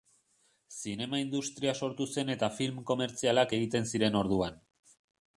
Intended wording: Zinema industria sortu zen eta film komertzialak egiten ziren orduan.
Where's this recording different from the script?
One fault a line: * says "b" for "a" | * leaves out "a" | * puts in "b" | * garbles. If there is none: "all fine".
all fine